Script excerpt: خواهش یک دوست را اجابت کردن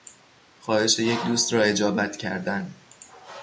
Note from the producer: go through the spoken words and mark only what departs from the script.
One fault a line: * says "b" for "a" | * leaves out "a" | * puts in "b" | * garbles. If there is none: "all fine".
all fine